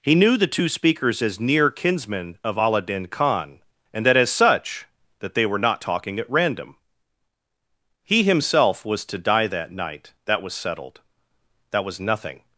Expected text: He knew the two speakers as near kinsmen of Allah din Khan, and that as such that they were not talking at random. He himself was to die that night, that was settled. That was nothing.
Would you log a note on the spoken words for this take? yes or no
no